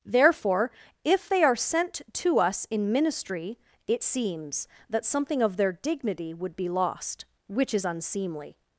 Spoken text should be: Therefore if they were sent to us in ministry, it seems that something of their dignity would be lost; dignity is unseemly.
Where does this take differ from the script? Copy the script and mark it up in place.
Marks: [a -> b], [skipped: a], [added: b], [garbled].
Therefore if they [were -> are] sent to us in ministry, it seems that something of their dignity would be lost; [dignity -> which] is unseemly.